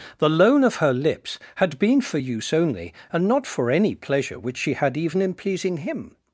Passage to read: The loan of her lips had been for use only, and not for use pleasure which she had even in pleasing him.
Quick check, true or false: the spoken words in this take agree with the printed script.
false